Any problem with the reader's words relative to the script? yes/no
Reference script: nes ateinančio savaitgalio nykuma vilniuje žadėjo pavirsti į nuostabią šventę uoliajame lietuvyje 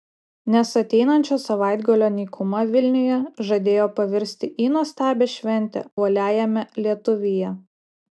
no